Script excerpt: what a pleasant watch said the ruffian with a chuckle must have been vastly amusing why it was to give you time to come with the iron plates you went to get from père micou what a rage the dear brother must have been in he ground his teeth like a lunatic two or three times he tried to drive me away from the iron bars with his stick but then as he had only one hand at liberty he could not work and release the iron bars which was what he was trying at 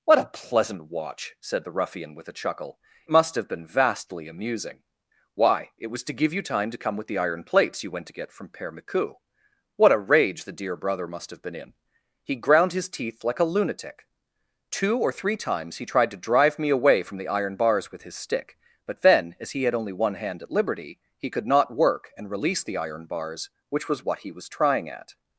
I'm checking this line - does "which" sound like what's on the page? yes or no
yes